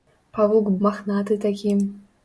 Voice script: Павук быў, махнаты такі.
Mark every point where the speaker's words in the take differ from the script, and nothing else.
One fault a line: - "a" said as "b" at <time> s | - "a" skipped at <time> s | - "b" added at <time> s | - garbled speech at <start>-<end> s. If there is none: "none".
- "быў" skipped at 0.7 s